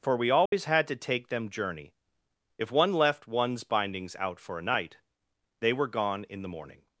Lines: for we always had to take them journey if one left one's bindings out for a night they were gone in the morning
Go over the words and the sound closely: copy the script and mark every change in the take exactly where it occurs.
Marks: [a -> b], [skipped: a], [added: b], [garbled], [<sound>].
for we always [dropout] had to take them journey if one left one's bindings out for a night they were gone in the morning